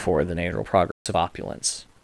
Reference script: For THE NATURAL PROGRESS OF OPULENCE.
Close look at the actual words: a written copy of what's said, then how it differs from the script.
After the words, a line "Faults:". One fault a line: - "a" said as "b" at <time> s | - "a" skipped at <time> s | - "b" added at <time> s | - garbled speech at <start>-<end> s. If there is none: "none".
For THE NATURAL PROGRESS OF OPULENCE.
Faults:
none